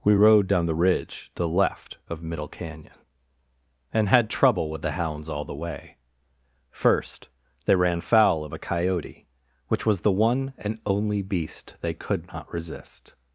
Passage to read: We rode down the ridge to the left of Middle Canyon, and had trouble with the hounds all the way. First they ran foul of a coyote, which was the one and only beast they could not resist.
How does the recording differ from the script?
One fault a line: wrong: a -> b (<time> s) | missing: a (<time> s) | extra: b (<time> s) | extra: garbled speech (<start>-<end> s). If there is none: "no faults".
no faults